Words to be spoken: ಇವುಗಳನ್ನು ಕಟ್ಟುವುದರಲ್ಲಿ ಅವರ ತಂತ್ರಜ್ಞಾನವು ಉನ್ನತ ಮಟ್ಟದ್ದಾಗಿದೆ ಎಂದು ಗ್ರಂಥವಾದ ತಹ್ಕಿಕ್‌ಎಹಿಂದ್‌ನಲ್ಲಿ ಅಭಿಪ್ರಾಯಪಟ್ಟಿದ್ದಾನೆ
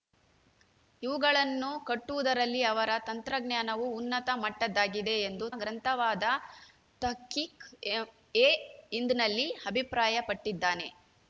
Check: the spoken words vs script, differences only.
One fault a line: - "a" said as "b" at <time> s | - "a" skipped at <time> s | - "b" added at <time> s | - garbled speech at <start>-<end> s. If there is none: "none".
none